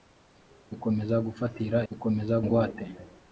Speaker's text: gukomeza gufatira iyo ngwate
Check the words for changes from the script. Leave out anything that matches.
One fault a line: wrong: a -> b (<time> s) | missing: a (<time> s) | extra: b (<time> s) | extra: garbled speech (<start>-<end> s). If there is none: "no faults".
wrong: iyo -> gukomeza (1.9 s)